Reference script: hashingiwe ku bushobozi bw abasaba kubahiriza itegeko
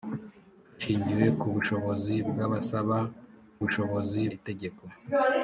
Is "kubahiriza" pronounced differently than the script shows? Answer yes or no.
yes